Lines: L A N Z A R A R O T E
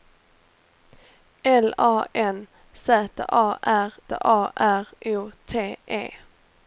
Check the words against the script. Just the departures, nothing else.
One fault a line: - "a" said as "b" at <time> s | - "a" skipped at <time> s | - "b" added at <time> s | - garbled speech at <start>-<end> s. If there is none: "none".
none